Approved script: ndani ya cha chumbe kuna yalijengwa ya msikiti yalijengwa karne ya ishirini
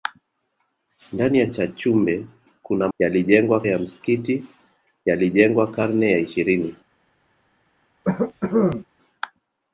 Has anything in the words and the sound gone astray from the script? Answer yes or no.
yes